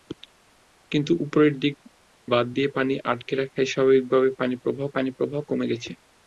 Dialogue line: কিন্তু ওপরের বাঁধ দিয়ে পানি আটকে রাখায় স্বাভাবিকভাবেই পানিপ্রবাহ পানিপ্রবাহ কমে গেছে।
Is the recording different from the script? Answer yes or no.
no